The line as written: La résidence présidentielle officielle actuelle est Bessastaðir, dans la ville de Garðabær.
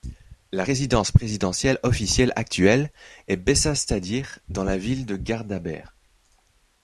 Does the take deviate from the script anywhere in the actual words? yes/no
no